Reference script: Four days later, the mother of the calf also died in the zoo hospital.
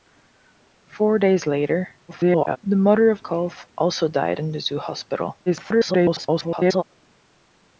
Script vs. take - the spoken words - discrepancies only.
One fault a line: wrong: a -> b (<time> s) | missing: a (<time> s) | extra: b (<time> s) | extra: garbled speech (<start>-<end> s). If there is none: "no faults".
extra: garbled speech (2.1-2.6 s)
missing: the (3.2 s)
extra: garbled speech (5.5-6.8 s)